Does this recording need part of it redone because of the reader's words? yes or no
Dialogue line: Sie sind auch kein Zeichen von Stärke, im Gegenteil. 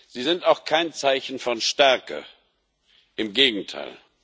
no